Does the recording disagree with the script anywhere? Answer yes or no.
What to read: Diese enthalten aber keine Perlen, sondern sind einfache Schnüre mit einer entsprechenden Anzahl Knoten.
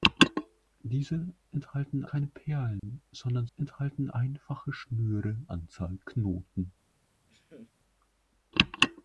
yes